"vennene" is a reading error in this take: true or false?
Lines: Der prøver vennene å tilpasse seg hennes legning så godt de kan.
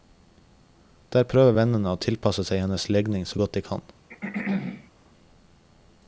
false